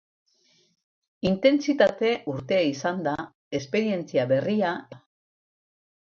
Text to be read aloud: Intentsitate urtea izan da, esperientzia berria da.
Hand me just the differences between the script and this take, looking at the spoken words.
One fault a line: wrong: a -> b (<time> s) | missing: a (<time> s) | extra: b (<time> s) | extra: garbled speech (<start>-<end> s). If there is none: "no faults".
no faults